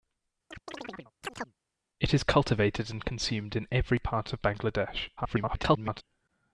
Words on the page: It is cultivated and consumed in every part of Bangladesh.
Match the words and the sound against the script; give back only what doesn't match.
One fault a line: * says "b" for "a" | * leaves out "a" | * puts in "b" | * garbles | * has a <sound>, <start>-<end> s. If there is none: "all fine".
* has a chirp, 0.5-1.6 s
* garbles